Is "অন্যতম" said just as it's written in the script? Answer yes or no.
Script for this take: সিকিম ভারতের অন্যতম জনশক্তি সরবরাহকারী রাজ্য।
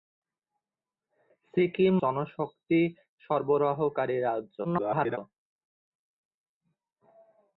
no